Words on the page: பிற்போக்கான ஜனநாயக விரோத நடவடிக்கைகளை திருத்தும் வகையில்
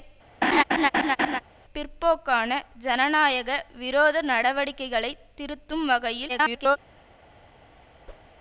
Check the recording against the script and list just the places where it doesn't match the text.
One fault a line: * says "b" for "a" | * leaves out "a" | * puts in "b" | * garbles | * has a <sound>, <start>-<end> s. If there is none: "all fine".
* has a laugh, 0.4-1.4 s
* garbles
* has a whoosh, 8.1-8.3 s